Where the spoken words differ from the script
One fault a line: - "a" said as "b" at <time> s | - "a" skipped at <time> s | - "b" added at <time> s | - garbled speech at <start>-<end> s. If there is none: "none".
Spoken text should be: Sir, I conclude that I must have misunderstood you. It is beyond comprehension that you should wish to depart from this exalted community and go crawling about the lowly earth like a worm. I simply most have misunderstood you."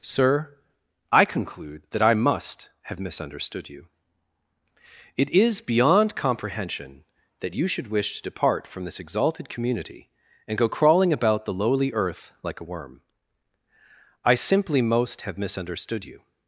none